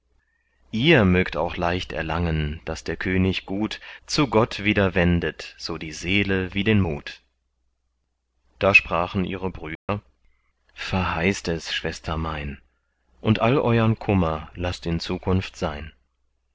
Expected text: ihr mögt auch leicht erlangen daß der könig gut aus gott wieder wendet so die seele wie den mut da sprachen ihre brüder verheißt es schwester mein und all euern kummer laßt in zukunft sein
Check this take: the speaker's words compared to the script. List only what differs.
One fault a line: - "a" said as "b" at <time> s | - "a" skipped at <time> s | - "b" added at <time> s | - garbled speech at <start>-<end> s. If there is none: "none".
- "aus" said as "zu" at 4.1 s